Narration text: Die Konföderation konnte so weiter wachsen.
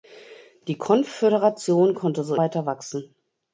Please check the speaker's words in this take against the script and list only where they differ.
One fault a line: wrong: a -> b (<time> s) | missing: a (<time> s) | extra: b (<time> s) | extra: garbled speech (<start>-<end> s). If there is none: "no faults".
no faults